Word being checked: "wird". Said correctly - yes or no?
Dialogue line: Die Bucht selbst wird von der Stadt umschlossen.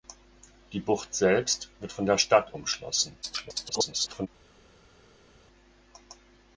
yes